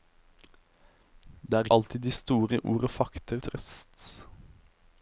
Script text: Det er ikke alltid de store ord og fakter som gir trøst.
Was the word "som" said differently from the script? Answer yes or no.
yes